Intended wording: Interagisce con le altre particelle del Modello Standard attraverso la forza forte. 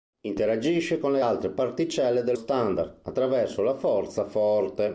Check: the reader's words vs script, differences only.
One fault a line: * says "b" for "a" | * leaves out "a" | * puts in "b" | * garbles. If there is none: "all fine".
* leaves out "Modello"